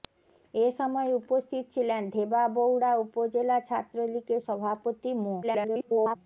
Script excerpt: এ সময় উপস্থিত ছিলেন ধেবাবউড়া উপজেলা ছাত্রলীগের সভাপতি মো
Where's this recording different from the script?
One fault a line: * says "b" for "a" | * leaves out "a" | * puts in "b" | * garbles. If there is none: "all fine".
* garbles